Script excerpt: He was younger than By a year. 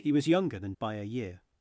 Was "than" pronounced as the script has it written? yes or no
yes